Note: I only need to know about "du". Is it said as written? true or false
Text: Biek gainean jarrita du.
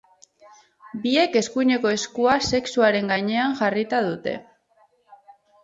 false